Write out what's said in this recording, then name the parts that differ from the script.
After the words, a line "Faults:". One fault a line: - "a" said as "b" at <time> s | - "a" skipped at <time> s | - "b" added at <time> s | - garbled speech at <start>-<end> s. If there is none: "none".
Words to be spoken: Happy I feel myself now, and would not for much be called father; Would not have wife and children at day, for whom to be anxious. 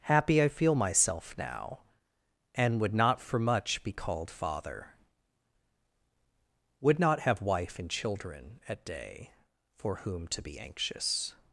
Happy I feel myself now, and would not for much be called father; Would not have wife and children at day, for whom to be anxious.
Faults:
none